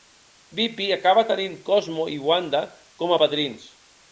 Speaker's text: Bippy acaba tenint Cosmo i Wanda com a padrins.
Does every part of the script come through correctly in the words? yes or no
yes